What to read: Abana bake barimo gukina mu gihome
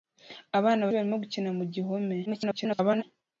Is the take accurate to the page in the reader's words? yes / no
no